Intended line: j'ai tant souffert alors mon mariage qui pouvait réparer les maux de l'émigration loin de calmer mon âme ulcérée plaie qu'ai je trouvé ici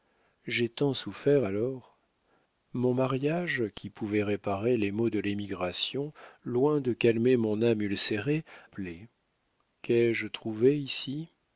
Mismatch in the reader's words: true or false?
false